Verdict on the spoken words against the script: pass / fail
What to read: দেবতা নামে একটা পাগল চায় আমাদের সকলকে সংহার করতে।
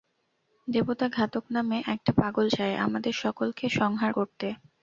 fail